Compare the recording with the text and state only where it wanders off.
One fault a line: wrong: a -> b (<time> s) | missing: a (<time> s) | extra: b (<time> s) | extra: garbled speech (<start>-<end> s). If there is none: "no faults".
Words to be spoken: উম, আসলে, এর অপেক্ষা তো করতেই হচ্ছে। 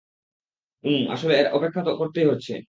no faults